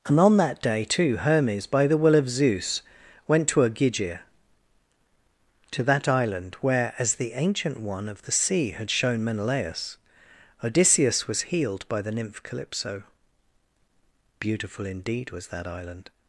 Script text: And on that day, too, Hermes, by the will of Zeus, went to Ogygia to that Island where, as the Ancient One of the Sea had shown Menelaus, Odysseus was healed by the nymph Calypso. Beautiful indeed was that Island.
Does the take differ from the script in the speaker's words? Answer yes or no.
no